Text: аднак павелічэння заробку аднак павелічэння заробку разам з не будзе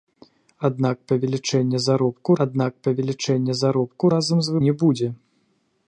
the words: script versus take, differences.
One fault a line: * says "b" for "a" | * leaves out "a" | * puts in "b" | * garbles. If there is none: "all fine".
all fine